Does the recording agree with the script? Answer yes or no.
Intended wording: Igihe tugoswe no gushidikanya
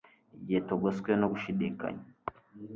yes